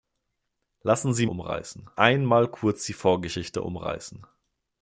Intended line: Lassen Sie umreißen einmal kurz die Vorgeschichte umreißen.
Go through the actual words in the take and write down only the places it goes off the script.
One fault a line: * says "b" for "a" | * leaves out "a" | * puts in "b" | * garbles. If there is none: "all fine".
all fine